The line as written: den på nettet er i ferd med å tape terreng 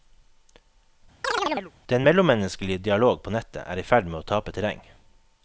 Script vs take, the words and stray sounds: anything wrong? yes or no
yes